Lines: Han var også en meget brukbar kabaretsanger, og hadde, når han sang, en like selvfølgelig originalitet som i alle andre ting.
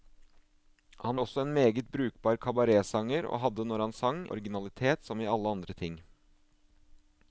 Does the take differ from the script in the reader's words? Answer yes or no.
yes